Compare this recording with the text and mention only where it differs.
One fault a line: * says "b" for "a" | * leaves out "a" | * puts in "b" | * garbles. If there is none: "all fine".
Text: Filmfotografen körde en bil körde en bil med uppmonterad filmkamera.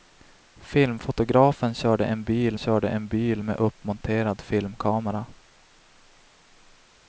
all fine